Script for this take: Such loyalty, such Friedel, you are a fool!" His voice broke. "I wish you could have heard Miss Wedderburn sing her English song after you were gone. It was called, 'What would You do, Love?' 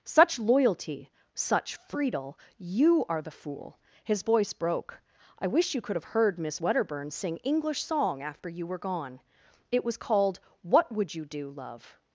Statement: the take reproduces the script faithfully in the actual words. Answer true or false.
false